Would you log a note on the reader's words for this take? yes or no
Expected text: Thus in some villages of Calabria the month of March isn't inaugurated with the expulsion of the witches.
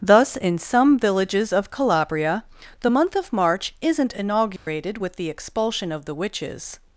no